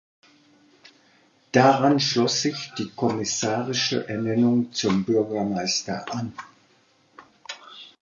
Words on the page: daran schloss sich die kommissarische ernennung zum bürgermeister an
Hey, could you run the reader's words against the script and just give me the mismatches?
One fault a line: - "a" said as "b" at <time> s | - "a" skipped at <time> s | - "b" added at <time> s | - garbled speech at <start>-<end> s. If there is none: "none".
none